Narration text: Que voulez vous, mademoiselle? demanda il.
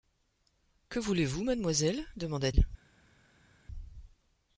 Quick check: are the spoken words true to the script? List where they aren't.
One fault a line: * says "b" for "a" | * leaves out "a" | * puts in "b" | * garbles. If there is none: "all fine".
all fine